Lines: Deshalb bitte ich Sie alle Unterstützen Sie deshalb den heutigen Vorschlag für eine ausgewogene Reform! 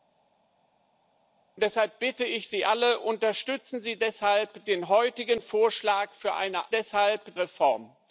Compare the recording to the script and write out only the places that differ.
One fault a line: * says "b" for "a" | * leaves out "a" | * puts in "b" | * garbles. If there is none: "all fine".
* says "deshalb" for "ausgewogene"